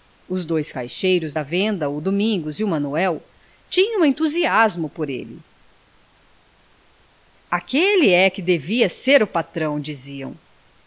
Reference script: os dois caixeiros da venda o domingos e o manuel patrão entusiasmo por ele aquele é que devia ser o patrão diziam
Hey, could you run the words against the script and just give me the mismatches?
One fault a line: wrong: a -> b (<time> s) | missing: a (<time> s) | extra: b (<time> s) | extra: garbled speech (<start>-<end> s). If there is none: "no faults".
wrong: patrão -> tinham (3.7 s)